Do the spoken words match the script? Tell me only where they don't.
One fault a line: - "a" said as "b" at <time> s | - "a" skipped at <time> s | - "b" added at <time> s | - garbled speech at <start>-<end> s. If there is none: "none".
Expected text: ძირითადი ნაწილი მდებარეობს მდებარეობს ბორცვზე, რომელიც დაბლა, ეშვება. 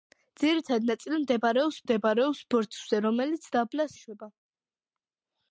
none